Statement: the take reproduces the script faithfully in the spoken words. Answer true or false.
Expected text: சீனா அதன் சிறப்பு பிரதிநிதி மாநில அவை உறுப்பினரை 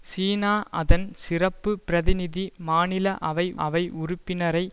false